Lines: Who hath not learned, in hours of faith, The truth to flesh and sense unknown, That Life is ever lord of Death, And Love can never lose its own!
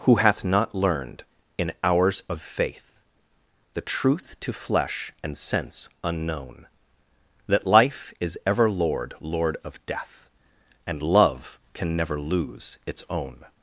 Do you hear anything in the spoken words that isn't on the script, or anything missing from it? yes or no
yes